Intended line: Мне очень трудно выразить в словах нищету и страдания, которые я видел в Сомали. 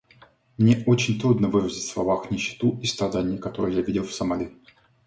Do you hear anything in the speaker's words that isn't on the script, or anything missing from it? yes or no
no